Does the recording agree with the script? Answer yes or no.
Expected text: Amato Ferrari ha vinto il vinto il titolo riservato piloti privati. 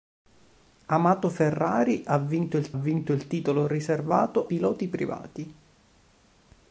yes